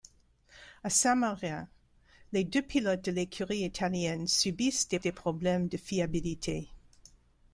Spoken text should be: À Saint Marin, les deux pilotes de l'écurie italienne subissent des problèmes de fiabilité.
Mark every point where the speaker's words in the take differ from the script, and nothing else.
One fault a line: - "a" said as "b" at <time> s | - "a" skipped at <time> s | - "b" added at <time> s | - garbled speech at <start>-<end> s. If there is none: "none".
- "des" added at 5.0 s